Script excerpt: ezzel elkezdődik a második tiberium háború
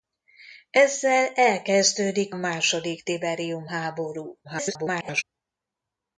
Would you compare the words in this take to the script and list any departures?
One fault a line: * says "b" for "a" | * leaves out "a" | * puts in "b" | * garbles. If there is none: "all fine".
* leaves out "a"
* garbles